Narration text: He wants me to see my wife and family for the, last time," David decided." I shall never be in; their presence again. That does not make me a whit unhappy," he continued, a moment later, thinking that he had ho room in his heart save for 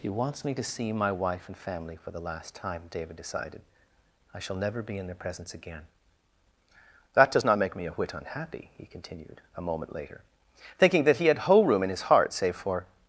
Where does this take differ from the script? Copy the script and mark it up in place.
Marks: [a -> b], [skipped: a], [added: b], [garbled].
He wants me to see my wife and family for the, last time," David decided." I shall never be in; their presence again. That does not make me a whit unhappy," he continued, a moment later, thinking that he had [ho -> whole] room in his heart save for